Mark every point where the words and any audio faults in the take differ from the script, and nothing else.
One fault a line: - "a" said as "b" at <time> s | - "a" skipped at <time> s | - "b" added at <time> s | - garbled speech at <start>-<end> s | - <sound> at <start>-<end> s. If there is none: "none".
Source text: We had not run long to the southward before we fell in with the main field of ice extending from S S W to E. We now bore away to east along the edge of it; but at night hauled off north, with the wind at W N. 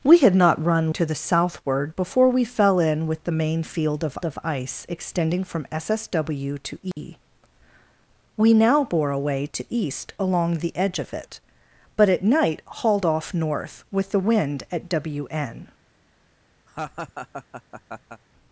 - "long" skipped at 0.9 s
- "of" added at 4.2 s
- dropout at 6.9-7.0 s
- laugh at 16.7-18.2 s